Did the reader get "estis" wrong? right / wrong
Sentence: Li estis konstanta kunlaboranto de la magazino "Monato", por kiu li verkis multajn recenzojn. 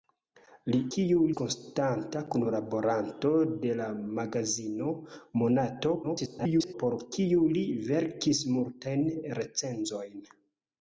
wrong